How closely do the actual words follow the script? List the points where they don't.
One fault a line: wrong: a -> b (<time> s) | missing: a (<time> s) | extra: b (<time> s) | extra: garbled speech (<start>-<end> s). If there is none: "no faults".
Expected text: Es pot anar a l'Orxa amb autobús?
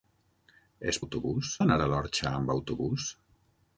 wrong: pot -> autobús (1.0 s)